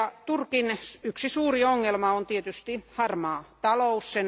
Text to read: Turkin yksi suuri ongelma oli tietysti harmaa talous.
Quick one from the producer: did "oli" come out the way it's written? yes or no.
no